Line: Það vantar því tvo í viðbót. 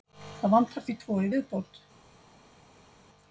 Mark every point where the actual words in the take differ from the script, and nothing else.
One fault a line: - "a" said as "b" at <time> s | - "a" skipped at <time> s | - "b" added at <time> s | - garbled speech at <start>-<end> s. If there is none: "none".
none